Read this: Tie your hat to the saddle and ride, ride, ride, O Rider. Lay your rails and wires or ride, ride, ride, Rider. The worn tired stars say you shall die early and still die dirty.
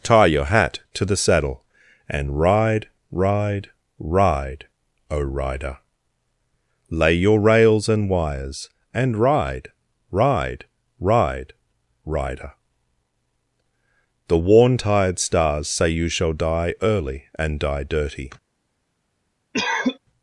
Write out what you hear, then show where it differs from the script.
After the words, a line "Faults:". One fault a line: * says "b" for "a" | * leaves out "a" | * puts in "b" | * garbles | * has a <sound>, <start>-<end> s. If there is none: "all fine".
Tie your hat to the saddle and ride, ride, ride, O Rider. Lay your rails and wires and ride, ride, ride, Rider. The worn tired stars say you shall die early and die dirty.
Faults:
* says "and" for "or"
* leaves out "still"
* has a cough, 19.5-20.0 s